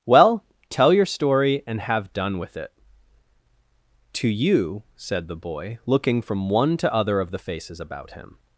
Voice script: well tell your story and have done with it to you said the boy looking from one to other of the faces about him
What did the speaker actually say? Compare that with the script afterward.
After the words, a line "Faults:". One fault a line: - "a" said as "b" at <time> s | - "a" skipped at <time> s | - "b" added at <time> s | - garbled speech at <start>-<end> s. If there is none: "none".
well tell your story and have done with it to you said the boy looking from one to other of the faces about him
Faults:
none